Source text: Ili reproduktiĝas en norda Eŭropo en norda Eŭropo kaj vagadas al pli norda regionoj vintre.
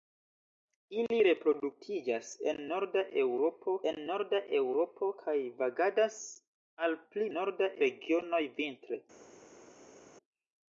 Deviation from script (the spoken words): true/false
false